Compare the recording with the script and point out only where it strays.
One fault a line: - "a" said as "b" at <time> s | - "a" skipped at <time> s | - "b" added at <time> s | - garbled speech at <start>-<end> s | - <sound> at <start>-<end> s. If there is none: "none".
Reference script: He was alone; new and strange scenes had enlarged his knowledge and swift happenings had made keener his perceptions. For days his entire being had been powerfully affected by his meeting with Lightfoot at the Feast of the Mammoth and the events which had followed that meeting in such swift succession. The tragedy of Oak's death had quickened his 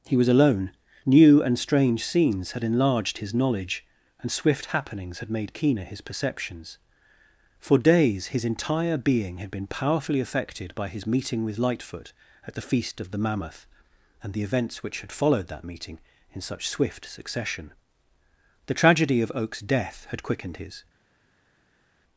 none